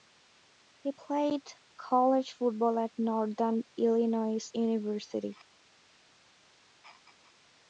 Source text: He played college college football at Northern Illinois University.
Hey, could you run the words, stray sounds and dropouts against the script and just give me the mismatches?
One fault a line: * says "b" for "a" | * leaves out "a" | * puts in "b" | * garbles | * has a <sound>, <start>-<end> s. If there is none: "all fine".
* leaves out "college"